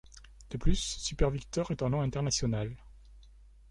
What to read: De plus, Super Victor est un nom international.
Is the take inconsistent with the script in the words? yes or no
no